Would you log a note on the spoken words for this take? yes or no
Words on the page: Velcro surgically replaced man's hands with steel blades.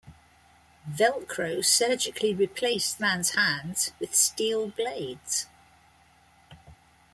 no